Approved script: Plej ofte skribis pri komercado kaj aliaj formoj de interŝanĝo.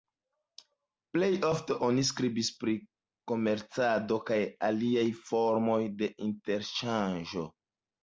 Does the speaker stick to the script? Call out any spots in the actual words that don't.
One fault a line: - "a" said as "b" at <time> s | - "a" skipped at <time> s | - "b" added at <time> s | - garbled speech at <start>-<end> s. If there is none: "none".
- "oni" added at 1.9 s